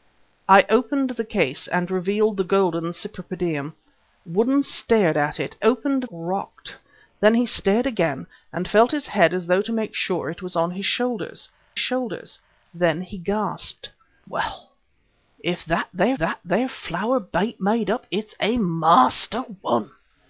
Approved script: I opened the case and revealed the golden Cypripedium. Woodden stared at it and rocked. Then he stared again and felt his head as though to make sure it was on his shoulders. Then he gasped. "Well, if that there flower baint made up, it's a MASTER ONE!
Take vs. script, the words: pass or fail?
fail